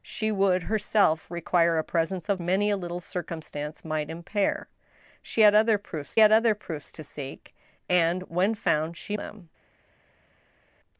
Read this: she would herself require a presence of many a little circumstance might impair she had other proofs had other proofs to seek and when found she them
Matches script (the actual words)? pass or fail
pass